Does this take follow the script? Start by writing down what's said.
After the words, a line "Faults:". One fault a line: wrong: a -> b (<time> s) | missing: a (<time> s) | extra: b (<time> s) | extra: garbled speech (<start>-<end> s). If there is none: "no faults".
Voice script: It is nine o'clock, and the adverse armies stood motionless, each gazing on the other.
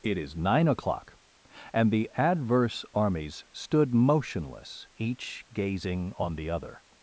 It is nine o'clock, and the adverse armies stood motionless, each gazing on the other.
Faults:
no faults